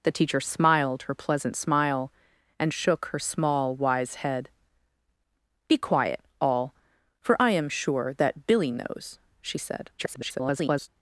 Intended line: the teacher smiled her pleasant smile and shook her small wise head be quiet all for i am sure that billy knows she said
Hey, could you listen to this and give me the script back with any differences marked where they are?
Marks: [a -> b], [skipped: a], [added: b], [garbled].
the teacher smiled her pleasant smile and shook her small wise head be quiet all for i am sure that billy knows she said [garbled]